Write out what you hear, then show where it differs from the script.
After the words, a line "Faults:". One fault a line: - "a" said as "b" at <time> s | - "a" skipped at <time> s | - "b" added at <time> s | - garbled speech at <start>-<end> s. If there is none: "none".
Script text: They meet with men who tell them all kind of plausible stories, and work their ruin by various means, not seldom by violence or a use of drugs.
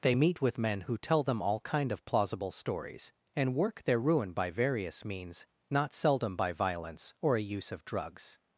They meet with men who tell them all kind of plausible stories, and work their ruin by various means, not seldom by violence or a use of drugs.
Faults:
none